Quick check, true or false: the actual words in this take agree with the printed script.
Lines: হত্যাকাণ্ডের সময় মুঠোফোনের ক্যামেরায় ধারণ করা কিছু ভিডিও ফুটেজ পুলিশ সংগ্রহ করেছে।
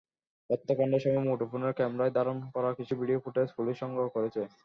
true